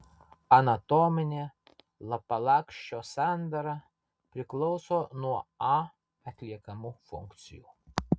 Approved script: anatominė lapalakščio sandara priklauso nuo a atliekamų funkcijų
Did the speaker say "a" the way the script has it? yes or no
yes